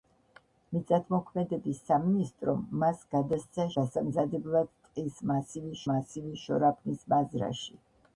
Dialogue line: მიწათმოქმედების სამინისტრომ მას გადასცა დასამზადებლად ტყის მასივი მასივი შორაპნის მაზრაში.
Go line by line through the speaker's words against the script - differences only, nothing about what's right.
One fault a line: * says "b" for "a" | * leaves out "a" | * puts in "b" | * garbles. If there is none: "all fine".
all fine